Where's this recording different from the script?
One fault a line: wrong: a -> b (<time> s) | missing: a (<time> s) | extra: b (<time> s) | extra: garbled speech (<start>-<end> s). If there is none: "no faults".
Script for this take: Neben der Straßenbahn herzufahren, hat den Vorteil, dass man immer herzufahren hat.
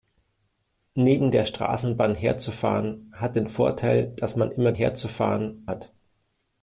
no faults